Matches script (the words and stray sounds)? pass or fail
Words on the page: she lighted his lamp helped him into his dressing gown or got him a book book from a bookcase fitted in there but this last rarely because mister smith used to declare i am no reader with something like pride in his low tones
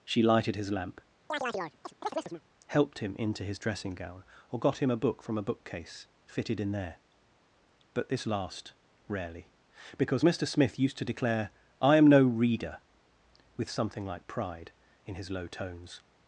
fail